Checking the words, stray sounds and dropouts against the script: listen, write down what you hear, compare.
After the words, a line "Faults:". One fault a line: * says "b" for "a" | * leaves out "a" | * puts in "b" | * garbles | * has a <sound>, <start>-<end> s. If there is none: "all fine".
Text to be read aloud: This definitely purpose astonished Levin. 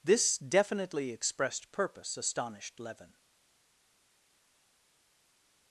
This definitely expressed purpose astonished Levin.
Faults:
* puts in "expressed"